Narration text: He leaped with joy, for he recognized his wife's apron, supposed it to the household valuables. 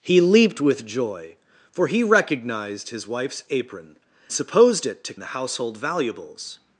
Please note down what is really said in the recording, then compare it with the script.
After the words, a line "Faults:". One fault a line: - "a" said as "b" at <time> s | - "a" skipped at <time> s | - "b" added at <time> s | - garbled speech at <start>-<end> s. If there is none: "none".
He leaped with joy, for he recognized his wife's apron, supposed it to the household valuables.
Faults:
none